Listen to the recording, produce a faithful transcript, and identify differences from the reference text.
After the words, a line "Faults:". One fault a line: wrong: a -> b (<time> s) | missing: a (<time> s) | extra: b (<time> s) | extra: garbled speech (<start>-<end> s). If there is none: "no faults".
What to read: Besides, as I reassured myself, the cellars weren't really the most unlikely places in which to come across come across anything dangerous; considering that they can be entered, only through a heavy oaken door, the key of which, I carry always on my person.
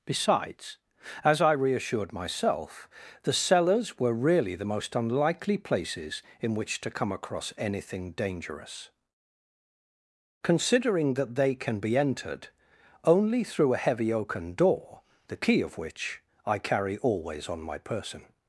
Besides, as I reassured myself, the cellars were really the most unlikely places in which to come across anything dangerous; considering that they can be entered, only through a heavy oaken door, the key of which, I carry always on my person.
Faults:
wrong: weren't -> were (4.0 s)
missing: come across (7.5 s)